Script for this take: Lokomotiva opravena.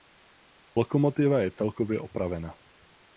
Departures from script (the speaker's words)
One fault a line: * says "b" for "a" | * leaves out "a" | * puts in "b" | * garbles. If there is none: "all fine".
* puts in "je celkově"